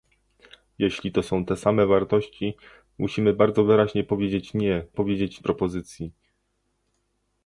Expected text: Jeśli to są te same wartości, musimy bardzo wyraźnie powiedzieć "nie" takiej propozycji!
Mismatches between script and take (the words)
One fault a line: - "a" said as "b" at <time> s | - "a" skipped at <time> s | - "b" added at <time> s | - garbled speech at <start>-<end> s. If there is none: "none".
- "takiej" said as "powiedzieć" at 4.9 s